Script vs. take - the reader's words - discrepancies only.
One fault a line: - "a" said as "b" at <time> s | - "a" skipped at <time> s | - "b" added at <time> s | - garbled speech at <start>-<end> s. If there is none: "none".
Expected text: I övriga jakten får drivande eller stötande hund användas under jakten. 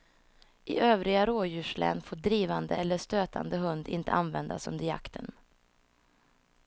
- "jakten" said as "rådjurslän" at 1.2 s
- "inte" added at 3.9 s